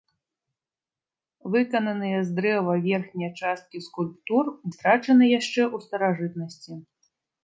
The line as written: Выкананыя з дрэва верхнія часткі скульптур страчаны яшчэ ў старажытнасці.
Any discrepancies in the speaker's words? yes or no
no